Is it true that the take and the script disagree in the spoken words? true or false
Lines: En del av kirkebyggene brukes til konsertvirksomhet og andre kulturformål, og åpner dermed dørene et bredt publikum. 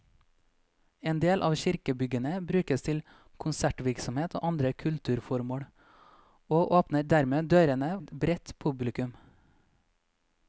false